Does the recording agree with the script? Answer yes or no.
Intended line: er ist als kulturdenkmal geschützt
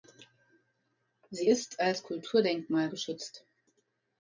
no